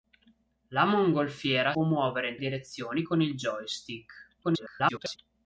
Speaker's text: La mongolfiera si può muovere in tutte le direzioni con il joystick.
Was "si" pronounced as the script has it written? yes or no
no